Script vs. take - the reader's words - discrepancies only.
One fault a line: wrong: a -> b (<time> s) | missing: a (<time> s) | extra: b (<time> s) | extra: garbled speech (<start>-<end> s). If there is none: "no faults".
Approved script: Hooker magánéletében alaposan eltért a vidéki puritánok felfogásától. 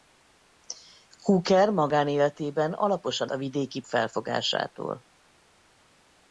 missing: eltért (3.3 s)
missing: puritánok (3.8 s)